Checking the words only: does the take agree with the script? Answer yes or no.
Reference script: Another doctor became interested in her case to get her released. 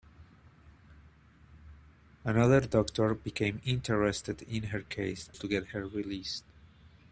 yes